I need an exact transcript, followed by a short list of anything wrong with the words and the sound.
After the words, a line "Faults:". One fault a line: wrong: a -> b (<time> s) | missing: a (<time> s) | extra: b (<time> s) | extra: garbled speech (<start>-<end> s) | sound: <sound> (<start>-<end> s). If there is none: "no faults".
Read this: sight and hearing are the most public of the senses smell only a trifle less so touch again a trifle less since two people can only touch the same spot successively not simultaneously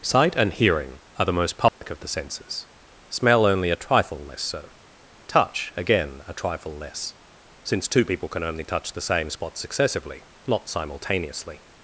sight and hearing are the most public of the senses smell only a trifle less so touch again a trifle less since two people can only touch the same spot successively not simultaneously
Faults:
sound: dropout (1.7-1.8 s)